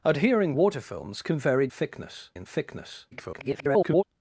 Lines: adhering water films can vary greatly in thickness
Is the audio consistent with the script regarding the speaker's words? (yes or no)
no